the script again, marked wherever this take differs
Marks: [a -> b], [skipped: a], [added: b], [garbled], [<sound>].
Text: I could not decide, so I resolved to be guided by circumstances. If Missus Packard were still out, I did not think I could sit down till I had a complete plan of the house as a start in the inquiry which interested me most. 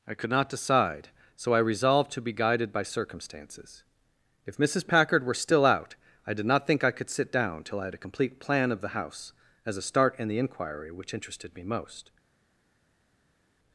I could not decide, so I resolved to be guided by circumstances. If Missus Packard were still out, I did not think I could sit down till I had a complete plan of the house as a start in the inquiry which interested me most.